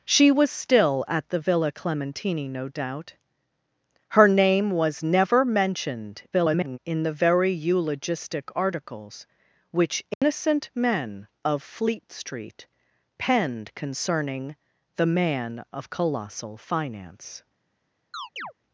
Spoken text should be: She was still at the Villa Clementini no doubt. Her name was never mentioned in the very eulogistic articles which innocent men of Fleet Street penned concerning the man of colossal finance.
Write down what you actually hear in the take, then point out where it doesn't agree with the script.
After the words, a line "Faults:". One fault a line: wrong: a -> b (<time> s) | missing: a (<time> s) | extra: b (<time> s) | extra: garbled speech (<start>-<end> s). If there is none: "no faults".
She was still at the Villa Clementini no doubt. Her name was never mentioned [garbled] in the very eulogistic articles which innocent men of Fleet Street penned concerning the man of colossal finance.
Faults:
extra: garbled speech (6.3-6.8 s)